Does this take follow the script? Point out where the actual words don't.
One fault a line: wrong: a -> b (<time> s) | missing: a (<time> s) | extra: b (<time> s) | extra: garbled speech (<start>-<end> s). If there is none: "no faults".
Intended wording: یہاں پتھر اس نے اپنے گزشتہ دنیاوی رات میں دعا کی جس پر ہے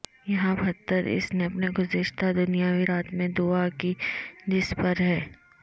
no faults